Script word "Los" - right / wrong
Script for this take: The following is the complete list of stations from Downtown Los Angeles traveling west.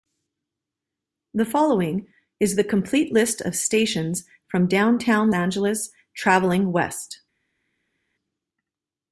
wrong